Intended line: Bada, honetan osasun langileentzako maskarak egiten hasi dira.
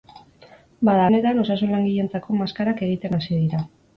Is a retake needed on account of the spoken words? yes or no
no